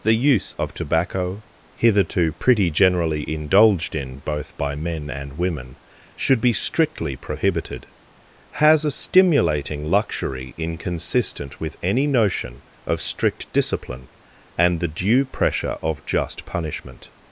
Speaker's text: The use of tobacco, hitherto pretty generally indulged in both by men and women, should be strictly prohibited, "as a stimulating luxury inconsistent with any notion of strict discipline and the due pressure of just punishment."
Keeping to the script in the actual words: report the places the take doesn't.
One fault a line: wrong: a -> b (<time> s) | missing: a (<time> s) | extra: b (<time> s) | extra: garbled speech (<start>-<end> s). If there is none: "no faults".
wrong: as -> has (8.5 s)